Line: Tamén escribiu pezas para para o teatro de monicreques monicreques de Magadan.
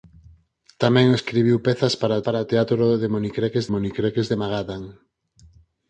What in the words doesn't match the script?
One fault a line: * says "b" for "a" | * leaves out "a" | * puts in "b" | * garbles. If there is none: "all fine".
all fine